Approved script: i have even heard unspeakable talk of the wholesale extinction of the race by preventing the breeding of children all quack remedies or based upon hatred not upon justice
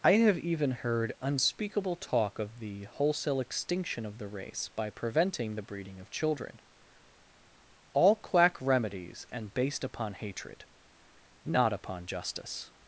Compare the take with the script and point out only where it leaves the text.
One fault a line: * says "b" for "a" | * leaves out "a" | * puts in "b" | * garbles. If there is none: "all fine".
* says "and" for "or"